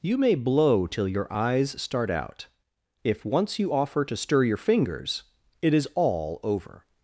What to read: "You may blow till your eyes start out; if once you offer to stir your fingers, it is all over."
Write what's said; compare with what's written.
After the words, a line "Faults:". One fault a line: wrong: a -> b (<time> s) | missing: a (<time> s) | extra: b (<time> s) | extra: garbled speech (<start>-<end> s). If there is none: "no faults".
"You may blow till your eyes start out; if once you offer to stir your fingers, it is all over."
Faults:
no faults